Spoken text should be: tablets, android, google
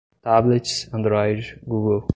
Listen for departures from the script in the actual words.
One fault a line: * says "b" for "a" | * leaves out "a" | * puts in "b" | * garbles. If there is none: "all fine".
all fine